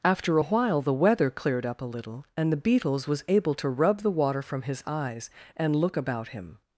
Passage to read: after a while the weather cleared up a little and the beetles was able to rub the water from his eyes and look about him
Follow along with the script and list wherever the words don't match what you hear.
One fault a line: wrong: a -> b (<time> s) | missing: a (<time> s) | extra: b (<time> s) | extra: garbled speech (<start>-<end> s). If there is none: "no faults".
no faults